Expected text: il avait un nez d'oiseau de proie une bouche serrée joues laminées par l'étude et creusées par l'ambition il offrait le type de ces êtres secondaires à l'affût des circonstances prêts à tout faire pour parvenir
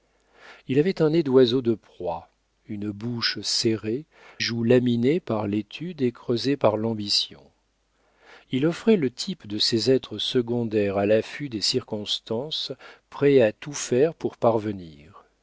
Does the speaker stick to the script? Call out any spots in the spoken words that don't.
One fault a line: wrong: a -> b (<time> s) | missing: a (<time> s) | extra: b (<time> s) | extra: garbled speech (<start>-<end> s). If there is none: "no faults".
no faults